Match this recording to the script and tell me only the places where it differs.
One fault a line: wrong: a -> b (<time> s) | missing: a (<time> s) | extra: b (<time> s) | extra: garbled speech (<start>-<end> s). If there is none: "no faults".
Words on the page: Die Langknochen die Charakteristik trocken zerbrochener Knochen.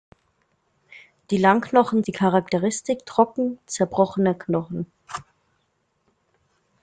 no faults